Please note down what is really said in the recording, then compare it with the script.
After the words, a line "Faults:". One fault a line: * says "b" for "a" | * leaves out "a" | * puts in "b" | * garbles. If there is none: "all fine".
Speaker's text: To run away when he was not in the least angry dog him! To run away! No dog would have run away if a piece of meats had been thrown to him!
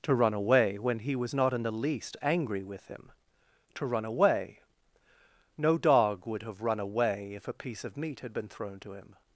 To run away when he was not in the least angry with him! To run away! No dog would have run away if a piece of meat had been thrown to him!
Faults:
* says "with" for "dog"
* says "meat" for "meats"